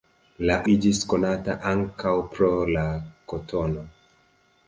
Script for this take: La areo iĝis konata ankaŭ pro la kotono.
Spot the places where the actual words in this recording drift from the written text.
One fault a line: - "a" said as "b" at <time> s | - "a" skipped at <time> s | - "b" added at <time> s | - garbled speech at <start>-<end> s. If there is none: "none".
- "areo" skipped at 0.5 s